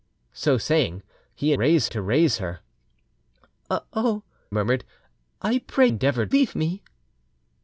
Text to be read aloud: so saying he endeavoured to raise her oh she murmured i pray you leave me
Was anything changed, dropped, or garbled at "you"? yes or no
yes